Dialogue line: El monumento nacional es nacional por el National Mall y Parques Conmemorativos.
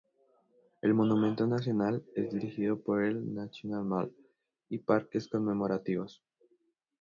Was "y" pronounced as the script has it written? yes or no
yes